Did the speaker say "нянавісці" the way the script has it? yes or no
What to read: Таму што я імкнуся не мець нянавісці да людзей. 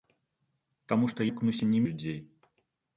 no